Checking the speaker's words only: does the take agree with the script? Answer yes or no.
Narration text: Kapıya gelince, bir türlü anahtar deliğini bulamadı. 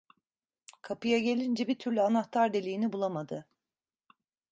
yes